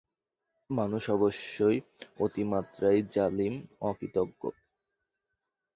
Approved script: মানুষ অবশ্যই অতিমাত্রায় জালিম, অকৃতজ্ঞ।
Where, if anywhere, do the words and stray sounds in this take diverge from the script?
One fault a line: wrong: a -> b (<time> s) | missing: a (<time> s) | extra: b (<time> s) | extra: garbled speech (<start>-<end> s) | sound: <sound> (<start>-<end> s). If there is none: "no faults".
no faults